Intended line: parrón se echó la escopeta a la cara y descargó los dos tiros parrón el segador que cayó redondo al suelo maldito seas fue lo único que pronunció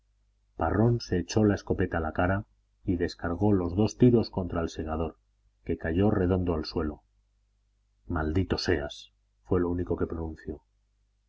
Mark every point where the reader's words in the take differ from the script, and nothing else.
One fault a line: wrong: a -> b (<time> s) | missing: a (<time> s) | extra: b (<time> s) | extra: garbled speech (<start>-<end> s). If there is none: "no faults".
wrong: parrón -> contra (4.3 s)